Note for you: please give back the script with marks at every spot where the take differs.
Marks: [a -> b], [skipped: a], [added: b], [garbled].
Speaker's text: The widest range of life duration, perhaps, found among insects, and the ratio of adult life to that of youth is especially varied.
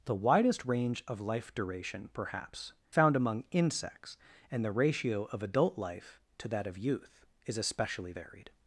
The widest range of life duration, perhaps, found among insects, and the ratio of adult life to that of youth is especially varied.